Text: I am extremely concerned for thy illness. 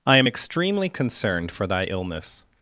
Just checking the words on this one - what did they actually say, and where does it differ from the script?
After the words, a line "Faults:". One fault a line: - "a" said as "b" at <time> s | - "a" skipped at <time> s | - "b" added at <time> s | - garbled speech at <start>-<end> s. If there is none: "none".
I am extremely concerned for thy illness.
Faults:
none